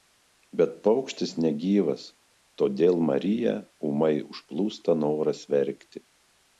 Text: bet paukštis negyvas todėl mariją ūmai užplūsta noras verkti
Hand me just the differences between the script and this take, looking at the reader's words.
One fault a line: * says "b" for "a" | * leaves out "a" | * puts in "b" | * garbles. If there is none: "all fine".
all fine